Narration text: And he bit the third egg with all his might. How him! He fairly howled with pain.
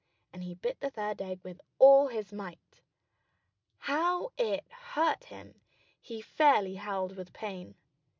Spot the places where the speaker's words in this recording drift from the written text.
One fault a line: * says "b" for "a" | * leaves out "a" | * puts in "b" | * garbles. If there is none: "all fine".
* puts in "it hurt"